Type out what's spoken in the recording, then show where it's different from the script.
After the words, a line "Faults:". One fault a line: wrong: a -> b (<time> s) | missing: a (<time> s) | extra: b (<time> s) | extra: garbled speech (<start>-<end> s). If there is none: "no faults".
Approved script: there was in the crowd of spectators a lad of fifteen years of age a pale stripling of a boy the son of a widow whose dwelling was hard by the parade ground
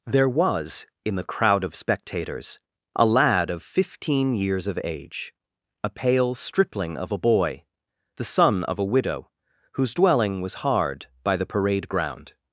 there was in the crowd of spectators a lad of fifteen years of age a pale stripling of a boy the son of a widow whose dwelling was hard by the parade ground
Faults:
no faults